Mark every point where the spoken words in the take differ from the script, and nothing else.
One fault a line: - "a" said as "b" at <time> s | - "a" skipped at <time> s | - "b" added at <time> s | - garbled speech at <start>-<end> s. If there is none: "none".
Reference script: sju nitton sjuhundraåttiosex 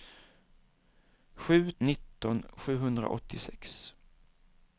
none